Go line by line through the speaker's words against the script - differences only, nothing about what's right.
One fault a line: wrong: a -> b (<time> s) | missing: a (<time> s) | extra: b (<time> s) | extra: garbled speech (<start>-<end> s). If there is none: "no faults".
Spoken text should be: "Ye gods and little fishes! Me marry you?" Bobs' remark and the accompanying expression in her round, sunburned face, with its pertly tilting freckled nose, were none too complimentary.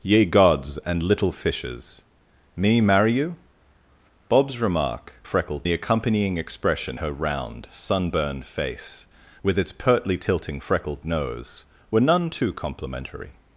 wrong: and -> freckled (5.2 s)
missing: in (7.0 s)